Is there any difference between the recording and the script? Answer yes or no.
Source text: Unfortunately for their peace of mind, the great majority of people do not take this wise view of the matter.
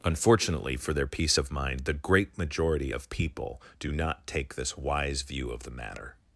no